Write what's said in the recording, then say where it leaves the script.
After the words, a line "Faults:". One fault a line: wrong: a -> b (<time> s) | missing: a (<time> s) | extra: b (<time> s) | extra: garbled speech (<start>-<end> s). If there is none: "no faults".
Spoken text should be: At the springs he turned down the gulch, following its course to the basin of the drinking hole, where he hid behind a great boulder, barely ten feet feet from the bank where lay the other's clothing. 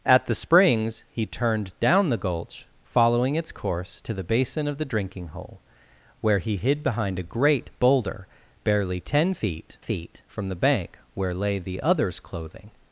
At the springs he turned down the gulch, following its course to the basin of the drinking hole, where he hid behind a great boulder, barely ten feet feet from the bank where lay the other's clothing.
Faults:
no faults